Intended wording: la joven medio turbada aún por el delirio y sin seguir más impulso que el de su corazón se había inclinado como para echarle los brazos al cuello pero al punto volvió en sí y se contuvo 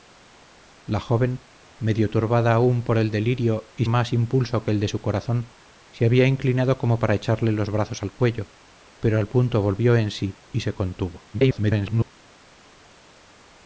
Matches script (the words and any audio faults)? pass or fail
fail